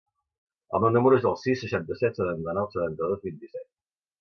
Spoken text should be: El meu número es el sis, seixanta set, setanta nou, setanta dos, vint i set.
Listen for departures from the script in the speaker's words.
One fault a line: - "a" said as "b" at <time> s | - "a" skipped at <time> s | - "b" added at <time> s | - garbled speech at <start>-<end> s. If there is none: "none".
none